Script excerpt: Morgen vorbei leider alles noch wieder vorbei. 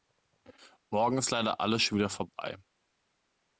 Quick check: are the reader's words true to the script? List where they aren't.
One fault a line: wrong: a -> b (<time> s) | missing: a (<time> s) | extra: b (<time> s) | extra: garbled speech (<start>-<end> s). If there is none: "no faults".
wrong: vorbei -> ist (1.2 s)
wrong: noch -> schon (1.8 s)